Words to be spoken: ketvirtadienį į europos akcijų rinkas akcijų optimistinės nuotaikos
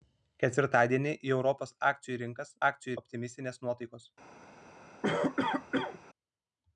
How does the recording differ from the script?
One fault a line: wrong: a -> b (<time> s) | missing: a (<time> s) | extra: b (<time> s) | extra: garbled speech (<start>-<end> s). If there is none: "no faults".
no faults